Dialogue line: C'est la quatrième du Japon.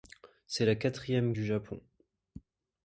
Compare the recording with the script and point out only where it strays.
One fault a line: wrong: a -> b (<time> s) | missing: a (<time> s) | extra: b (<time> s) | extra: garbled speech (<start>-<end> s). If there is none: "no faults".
no faults